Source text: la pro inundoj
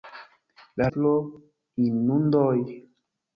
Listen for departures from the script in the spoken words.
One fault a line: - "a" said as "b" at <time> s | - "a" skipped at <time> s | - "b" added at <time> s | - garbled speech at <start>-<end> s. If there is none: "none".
none